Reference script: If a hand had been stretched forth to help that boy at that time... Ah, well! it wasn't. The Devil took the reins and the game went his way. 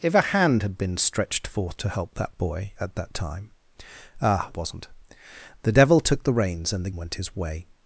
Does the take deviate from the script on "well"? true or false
true